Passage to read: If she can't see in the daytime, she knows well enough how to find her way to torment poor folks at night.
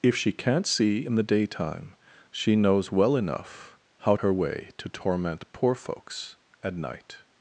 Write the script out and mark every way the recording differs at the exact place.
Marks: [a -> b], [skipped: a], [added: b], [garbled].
If she can't see in the daytime, she knows well enough how [skipped: to find] her way to torment poor folks at night.